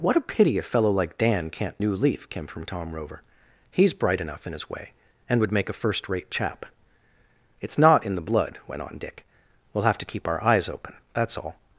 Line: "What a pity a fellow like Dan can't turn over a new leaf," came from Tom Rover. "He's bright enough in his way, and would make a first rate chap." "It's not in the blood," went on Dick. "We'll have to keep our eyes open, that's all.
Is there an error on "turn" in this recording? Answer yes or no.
yes